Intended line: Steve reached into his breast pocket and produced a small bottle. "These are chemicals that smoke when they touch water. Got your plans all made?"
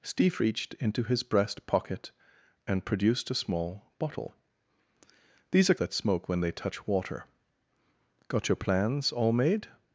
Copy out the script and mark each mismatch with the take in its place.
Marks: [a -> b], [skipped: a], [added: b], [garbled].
Steve reached into his breast pocket and produced a small bottle. "These are [skipped: chemicals] that smoke when they touch water. Got your plans all made?"